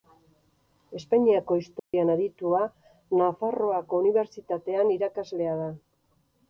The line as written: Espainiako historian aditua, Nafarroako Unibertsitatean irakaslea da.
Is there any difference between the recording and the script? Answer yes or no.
no